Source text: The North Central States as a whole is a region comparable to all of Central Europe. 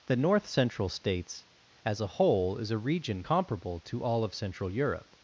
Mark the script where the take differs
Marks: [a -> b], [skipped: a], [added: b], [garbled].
The North Central States as a whole is a region comparable to all of Central Europe.